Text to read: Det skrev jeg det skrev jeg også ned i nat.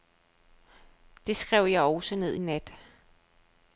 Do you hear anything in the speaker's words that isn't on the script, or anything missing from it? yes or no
yes